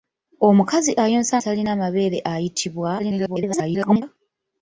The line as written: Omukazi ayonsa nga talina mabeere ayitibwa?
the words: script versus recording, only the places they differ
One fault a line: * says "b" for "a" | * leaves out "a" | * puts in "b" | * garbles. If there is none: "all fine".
* leaves out "nga"
* garbles